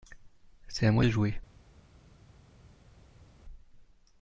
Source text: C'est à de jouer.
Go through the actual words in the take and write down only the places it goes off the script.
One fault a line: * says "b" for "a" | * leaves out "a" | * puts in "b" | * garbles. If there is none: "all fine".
* puts in "moi"